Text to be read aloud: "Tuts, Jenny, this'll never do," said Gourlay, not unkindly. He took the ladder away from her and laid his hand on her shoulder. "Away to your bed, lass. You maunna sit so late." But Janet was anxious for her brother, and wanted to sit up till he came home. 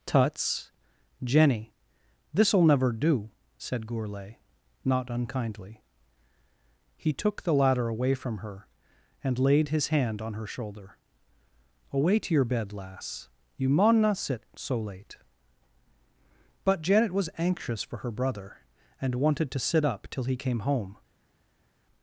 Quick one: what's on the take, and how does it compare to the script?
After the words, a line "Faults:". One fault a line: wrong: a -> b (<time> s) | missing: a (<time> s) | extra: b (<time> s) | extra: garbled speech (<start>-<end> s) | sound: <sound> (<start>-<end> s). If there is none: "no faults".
"Tuts, Jenny, this'll never do," said Gourlay, not unkindly. He took the ladder away from her and laid his hand on her shoulder. "Away to your bed, lass. You maunna sit so late." But Janet was anxious for her brother, and wanted to sit up till he came home.
Faults:
no faults